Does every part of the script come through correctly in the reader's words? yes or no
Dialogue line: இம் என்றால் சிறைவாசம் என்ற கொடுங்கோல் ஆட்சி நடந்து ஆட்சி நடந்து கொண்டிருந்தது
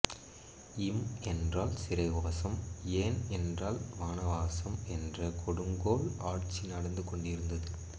no